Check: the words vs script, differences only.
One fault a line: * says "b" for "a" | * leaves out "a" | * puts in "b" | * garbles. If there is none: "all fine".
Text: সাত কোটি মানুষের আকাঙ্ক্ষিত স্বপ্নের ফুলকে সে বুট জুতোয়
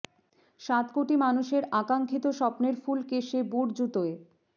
all fine